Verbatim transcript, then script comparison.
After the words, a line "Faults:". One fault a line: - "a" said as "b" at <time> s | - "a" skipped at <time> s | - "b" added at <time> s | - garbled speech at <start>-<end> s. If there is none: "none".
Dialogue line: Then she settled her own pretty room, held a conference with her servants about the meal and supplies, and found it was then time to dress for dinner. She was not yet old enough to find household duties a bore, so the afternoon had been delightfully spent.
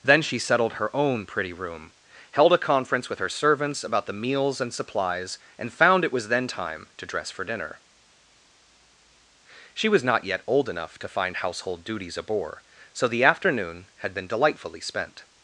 Then she settled her own pretty room, held a conference with her servants about the meals and supplies, and found it was then time to dress for dinner. She was not yet old enough to find household duties a bore, so the afternoon had been delightfully spent.
Faults:
- "meal" said as "meals" at 4.1 s